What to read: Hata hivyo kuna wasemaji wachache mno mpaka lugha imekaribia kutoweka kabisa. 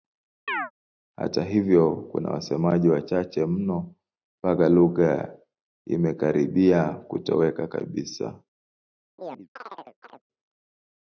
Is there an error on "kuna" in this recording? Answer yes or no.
no